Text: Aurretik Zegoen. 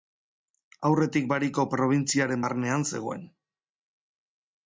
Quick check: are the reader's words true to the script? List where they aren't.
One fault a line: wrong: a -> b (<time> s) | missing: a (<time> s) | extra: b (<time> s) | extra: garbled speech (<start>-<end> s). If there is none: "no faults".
extra: Bariko probintziaren barnean (1.3 s)